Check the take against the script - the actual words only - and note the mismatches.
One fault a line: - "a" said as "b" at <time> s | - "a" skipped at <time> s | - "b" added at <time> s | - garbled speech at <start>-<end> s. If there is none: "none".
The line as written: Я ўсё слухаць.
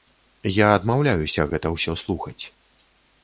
- "адмаўляюся гэта" added at 0.8 s